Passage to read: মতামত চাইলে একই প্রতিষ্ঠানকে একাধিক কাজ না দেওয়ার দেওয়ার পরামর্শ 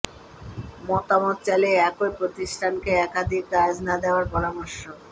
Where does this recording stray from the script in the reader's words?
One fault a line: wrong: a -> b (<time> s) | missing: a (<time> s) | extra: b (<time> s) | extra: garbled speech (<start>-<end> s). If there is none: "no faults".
missing: দেওয়ার (4.2 s)